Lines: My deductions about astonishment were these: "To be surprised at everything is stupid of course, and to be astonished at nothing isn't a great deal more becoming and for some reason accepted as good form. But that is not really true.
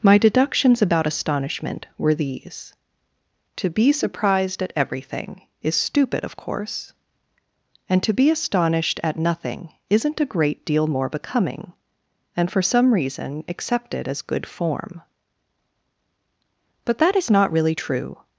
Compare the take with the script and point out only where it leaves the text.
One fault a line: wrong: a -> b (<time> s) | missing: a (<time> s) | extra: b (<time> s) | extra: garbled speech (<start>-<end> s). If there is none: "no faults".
no faults